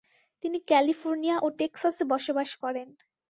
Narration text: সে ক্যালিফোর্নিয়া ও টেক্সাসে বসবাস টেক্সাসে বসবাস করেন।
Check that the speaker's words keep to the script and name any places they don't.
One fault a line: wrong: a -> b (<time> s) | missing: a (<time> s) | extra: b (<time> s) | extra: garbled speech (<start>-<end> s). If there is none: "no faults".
wrong: সে -> তিনি (0.4 s)
missing: টেক্সাসে বসবাস (2.5 s)